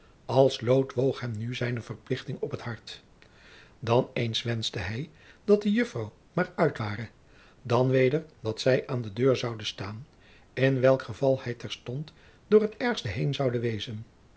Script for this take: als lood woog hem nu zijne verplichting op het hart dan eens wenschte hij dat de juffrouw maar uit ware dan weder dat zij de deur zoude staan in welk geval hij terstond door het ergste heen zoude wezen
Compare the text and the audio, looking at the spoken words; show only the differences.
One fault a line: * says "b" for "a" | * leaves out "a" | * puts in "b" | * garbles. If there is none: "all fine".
* puts in "aan"